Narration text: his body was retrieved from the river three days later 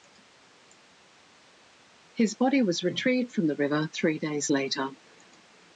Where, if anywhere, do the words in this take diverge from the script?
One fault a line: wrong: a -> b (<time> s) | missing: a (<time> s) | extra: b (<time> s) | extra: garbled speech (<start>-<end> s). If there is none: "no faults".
no faults